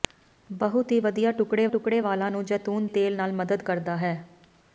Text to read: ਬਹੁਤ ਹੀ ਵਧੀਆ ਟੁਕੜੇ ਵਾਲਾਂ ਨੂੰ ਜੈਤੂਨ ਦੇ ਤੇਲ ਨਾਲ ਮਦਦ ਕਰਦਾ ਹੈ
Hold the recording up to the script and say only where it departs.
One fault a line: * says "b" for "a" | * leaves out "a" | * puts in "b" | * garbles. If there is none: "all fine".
* puts in "ਟੁਕੜੇ"
* leaves out "ਦੇ"